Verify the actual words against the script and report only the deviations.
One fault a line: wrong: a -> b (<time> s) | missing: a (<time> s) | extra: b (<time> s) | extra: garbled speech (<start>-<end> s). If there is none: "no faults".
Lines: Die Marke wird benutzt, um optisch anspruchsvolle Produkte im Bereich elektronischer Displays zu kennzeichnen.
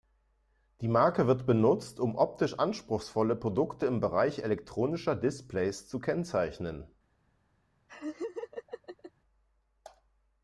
no faults